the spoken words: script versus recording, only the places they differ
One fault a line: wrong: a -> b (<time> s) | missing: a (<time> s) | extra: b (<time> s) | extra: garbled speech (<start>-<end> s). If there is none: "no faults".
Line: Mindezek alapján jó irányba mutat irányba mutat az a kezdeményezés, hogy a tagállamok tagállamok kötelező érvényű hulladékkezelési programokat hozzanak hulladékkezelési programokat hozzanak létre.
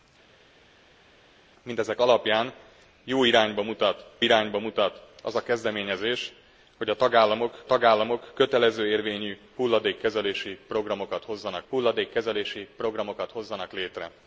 no faults